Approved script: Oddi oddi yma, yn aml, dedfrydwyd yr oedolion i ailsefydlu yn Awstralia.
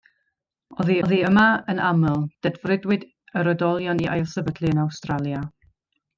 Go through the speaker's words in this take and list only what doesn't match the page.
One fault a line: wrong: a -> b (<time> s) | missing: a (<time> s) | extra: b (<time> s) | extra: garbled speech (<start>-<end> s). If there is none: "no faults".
no faults